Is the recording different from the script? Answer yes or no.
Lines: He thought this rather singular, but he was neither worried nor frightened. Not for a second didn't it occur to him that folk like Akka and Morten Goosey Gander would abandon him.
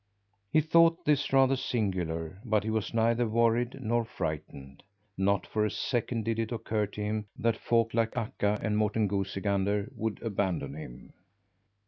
yes